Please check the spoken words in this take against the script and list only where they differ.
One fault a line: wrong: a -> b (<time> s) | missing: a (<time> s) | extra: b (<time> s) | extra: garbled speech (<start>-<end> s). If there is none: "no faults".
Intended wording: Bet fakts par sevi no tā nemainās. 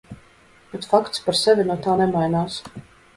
no faults